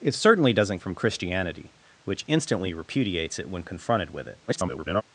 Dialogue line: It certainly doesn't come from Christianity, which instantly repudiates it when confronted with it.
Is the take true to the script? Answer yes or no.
no